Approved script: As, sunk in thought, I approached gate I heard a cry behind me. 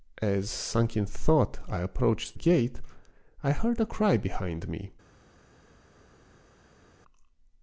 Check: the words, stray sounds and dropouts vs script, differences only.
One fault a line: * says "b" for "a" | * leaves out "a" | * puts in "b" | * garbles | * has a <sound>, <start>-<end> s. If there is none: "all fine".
all fine